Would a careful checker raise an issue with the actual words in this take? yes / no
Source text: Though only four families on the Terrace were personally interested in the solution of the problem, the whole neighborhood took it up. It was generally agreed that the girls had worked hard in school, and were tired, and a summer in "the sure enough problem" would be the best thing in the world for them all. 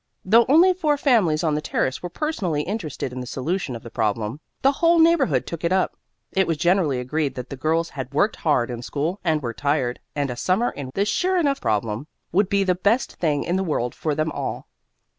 no